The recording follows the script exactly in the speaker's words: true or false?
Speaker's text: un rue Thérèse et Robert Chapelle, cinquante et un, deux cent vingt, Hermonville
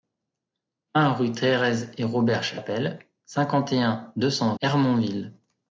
false